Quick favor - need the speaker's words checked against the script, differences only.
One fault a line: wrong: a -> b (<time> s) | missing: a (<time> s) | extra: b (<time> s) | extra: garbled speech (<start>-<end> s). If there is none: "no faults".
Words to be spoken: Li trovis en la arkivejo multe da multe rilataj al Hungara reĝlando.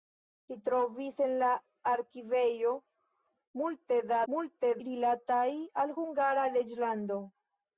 no faults